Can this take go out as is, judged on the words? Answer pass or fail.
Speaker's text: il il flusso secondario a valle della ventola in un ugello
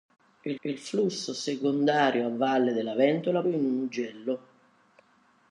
pass